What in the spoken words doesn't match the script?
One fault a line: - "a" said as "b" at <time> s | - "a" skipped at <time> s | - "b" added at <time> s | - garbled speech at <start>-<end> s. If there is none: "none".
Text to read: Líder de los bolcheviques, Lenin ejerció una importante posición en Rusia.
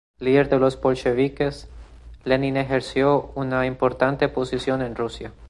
none